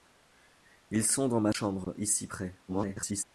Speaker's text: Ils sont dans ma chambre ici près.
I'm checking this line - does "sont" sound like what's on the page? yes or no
yes